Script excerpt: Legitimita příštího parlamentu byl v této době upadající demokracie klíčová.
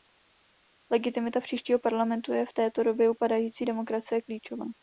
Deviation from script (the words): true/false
true